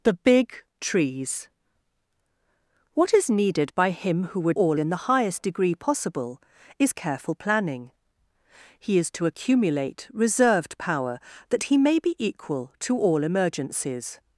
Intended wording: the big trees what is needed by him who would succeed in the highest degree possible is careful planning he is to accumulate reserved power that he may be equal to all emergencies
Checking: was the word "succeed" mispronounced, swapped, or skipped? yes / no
yes